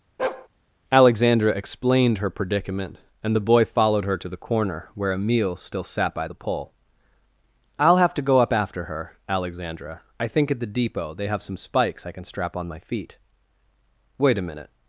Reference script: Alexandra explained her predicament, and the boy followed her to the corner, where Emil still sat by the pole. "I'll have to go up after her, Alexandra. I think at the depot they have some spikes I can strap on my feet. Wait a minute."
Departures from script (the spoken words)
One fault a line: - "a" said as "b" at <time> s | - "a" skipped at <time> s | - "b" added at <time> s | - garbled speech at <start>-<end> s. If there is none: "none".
none